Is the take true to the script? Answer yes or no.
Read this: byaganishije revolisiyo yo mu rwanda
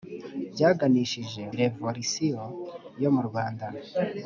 yes